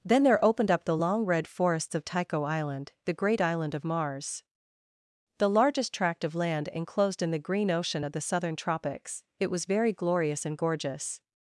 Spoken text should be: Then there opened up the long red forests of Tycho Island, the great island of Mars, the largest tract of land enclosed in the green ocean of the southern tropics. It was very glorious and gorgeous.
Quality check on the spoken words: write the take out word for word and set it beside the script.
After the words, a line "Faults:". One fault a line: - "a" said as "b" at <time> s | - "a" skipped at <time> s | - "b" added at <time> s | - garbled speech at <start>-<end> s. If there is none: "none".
Then there opened up the long red forests of Tycho Island, the great island of Mars, the largest tract of land enclosed in the green ocean of the southern tropics. It was very glorious and gorgeous.
Faults:
none